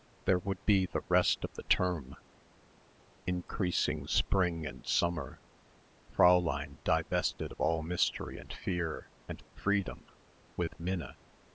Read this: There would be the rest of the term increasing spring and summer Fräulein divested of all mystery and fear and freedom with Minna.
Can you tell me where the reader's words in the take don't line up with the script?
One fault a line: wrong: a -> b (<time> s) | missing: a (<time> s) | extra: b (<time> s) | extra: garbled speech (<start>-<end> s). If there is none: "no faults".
no faults